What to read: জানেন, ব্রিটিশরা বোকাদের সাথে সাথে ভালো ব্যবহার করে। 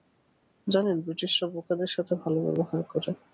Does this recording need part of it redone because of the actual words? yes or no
yes